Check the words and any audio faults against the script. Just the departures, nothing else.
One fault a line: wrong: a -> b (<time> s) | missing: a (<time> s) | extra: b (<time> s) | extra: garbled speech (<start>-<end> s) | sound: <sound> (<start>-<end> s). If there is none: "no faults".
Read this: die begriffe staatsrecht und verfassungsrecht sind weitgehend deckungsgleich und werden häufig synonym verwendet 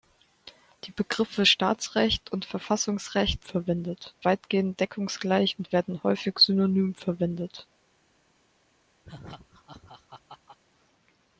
wrong: sind -> verwendet (3.4 s)
sound: laugh (9.0-10.6 s)